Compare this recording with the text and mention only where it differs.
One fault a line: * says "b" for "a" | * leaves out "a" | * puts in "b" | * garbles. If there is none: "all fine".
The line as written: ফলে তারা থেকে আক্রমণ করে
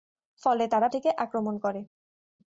all fine